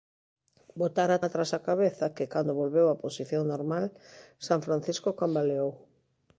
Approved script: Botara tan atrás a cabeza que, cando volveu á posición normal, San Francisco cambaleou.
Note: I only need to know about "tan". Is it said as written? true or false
false